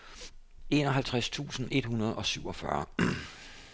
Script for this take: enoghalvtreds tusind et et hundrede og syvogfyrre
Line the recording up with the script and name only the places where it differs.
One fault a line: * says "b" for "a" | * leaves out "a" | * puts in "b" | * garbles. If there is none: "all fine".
* leaves out "et"